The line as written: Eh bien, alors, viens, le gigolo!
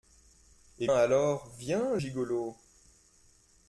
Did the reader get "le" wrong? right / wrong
wrong